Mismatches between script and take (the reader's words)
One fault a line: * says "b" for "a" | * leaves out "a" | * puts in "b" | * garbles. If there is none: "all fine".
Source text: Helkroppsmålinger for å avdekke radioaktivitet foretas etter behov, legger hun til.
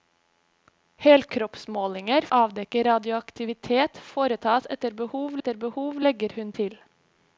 * leaves out "for"
* puts in "etter behov"